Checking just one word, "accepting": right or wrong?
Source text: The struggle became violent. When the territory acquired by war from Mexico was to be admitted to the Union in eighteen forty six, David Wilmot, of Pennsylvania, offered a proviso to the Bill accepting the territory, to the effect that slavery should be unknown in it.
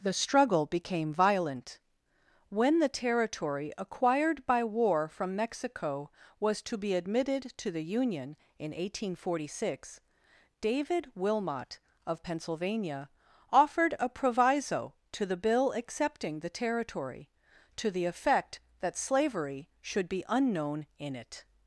right